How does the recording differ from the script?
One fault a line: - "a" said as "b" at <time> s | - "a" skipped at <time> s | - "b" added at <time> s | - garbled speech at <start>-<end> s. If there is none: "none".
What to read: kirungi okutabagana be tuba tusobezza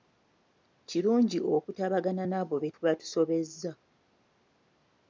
- "n'abo" added at 2.3 s